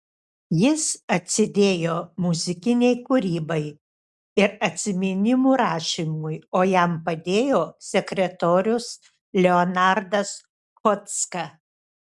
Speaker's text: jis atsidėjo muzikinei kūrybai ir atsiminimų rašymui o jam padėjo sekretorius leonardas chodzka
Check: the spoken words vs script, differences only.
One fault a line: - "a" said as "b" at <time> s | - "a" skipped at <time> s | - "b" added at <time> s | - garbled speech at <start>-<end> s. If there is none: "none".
none